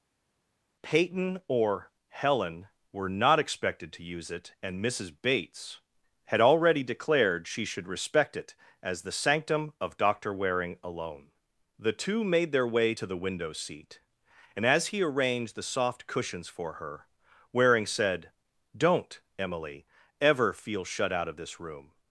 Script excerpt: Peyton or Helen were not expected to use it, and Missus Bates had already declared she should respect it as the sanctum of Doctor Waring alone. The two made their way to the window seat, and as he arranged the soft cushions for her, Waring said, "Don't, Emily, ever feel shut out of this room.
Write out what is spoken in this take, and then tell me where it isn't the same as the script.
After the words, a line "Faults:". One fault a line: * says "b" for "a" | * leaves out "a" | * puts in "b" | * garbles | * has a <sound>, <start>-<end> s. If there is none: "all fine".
Peyton or Helen were not expected to use it, and Missus Bates had already declared she should respect it as the sanctum of Doctor Waring alone. The two made their way to the window seat, and as he arranged the soft cushions for her, Waring said, "Don't, Emily, ever feel shut out of this room.
Faults:
all fine